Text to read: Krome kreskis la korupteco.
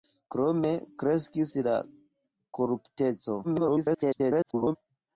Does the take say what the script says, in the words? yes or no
no